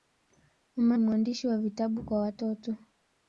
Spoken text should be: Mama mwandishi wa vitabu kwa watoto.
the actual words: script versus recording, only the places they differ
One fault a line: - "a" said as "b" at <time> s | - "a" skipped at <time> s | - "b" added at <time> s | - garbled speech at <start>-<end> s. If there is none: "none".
none